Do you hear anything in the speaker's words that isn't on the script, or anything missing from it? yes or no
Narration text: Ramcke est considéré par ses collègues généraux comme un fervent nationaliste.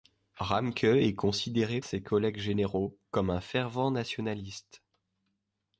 yes